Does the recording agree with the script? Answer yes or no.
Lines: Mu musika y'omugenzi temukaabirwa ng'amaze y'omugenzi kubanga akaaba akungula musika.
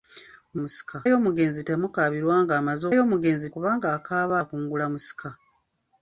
yes